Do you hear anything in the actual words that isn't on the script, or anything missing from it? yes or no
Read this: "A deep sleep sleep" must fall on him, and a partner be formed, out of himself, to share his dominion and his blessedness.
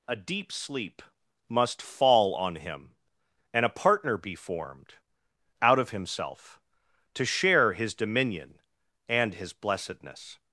yes